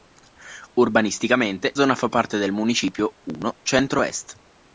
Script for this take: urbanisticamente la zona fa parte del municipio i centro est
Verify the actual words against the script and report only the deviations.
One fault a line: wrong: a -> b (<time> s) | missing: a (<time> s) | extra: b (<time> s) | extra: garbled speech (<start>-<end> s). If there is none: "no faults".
missing: la (1.8 s)